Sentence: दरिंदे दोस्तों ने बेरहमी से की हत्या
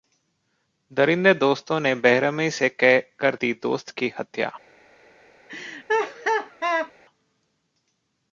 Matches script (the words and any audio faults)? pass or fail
fail